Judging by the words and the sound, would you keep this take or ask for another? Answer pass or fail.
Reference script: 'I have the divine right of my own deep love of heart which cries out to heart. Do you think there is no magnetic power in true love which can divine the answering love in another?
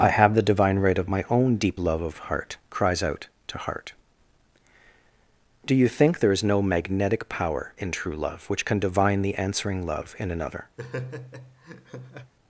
fail